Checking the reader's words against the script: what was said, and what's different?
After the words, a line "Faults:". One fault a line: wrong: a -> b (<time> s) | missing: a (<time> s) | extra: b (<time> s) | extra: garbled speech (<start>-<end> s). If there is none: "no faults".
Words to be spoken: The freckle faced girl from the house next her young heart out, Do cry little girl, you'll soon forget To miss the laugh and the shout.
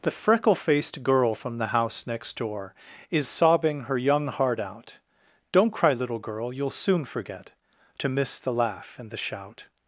The freckle faced girl from the house next door, Is sobbing her young heart out, Don't cry little girl, you'll soon forget To miss the laugh and the shout.
Faults:
extra: door Is sobbing (2.4 s)
wrong: Do -> Don't (5.5 s)